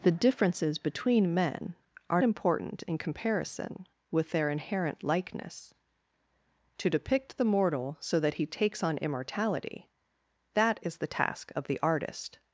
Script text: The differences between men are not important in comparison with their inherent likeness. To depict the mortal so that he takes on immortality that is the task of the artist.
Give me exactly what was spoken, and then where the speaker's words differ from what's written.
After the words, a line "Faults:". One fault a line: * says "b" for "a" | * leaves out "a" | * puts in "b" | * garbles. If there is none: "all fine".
The differences between men are important in comparison with their inherent likeness. To depict the mortal so that he takes on immortality that is the task of the artist.
Faults:
* leaves out "not"